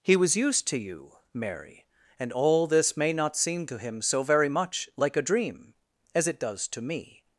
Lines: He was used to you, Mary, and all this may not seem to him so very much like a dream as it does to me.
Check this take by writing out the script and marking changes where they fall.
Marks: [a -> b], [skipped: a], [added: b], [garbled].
He was used to you, Mary, and all this may not seem to him so very much like a dream as it does to me.